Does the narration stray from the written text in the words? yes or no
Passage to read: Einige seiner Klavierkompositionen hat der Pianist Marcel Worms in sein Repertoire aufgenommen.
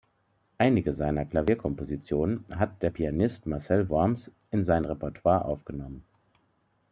no